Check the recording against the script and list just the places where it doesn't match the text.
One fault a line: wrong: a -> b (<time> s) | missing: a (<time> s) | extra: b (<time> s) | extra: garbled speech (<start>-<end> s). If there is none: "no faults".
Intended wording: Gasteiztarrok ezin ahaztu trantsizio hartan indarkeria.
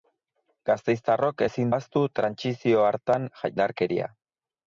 no faults